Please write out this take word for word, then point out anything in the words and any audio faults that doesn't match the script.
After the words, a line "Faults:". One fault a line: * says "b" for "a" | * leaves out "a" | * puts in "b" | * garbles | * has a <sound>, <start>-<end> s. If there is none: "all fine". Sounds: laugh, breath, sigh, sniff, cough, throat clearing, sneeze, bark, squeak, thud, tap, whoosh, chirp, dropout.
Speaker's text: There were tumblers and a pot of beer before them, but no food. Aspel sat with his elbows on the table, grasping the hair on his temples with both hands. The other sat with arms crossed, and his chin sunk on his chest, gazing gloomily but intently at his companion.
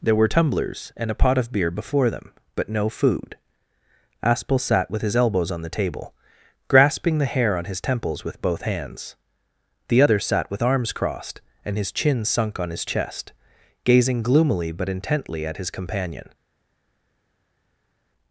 There were tumblers and a pot of beer before them, but no food. Aspel sat with his elbows on the table, grasping the hair on his temples with both hands. The other sat with arms crossed, and his chin sunk on his chest, gazing gloomily but intently at his companion.
Faults:
all fine